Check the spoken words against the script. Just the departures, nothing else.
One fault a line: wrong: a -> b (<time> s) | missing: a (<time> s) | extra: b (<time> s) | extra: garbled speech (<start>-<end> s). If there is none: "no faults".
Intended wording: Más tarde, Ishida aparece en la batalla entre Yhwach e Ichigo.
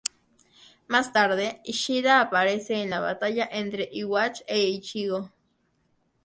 no faults